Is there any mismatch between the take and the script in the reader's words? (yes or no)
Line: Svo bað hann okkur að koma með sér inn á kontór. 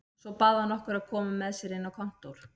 no